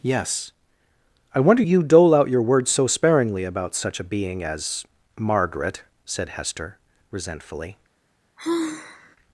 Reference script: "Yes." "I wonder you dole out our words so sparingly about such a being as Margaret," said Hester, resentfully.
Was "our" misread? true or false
true